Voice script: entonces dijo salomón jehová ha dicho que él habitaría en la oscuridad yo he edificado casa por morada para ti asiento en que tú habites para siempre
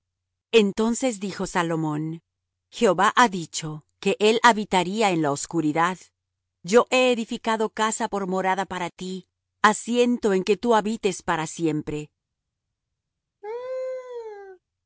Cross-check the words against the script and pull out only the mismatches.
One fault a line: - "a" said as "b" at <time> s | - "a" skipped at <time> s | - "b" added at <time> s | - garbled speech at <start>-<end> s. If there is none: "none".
none